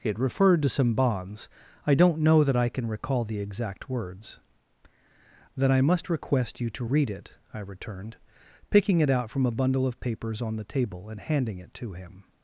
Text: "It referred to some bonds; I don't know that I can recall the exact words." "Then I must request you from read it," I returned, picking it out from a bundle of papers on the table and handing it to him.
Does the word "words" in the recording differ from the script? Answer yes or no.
no